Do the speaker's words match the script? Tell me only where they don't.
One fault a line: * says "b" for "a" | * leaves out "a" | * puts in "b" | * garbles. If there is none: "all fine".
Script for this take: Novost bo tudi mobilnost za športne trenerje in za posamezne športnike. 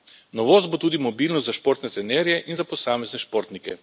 all fine